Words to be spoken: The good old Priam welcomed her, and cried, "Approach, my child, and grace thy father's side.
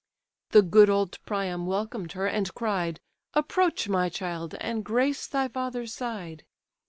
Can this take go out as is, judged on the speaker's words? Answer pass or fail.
pass